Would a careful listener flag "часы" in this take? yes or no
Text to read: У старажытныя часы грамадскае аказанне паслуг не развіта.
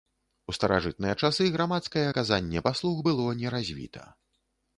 no